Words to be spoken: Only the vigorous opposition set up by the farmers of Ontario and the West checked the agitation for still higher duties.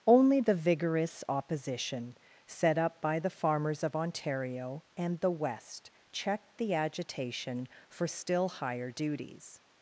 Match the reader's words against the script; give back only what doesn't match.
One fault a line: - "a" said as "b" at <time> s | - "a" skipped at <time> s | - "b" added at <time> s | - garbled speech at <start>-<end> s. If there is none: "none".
none